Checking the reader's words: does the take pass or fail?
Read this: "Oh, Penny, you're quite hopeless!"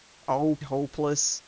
fail